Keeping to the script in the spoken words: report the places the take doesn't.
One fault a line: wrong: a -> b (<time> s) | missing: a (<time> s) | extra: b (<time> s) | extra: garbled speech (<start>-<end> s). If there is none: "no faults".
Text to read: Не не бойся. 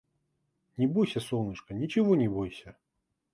extra: бойся солнышко ничего (0.9 s)